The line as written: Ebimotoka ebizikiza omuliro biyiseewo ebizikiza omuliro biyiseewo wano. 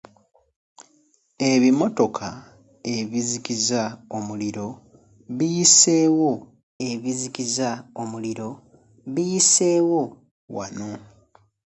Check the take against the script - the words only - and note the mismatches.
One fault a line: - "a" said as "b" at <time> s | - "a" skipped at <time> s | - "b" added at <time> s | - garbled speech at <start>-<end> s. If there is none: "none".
none